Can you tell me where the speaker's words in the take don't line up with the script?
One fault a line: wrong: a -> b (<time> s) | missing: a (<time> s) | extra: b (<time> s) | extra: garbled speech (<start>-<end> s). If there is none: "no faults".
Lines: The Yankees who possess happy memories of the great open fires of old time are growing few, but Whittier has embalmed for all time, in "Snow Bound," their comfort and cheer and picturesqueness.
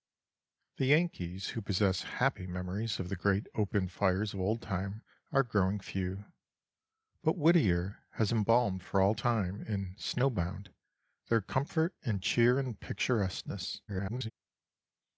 extra: garbled speech (13.9-14.3 s)